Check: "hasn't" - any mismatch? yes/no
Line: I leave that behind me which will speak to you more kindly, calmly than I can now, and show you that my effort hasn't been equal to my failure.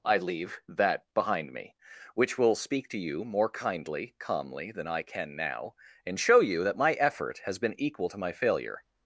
yes